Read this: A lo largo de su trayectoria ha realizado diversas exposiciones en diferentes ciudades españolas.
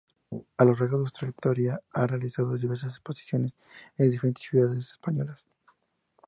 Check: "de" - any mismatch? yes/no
no